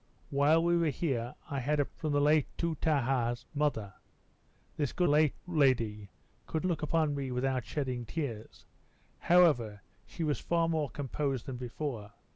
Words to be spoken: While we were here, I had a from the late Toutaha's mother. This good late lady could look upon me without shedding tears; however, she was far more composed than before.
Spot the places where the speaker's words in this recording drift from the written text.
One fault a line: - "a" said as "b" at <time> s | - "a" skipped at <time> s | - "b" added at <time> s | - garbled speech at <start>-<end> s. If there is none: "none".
none